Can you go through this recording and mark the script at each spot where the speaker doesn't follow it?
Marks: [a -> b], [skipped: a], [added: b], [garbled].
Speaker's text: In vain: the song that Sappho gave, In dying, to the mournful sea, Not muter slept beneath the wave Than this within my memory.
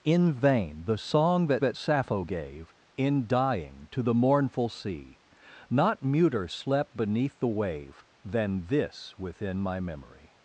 In vain: the song that [added: that] Sappho gave, In dying, to the mournful sea, Not muter slept beneath the wave Than this within my memory.